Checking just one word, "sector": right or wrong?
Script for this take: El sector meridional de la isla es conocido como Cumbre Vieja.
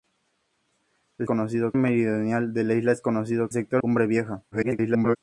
wrong